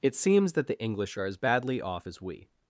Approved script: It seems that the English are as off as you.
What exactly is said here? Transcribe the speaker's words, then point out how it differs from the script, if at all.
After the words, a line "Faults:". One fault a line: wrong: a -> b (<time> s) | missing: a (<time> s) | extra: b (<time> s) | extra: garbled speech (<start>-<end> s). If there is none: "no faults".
It seems that the English are as badly off as we.
Faults:
extra: badly (1.3 s)
wrong: you -> we (2.2 s)